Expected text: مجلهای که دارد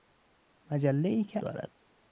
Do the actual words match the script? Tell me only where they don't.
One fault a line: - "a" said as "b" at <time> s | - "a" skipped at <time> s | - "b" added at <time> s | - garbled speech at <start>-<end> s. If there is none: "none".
none